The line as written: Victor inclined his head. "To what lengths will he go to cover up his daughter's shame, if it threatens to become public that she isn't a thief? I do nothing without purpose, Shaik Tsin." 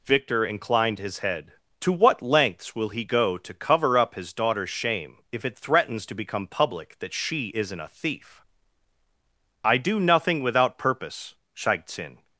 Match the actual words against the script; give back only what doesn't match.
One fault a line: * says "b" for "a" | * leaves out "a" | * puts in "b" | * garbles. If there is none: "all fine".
all fine